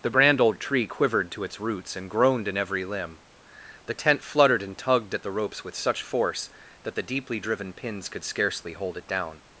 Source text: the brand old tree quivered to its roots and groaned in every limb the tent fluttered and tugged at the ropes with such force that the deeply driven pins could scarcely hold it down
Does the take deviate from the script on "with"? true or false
false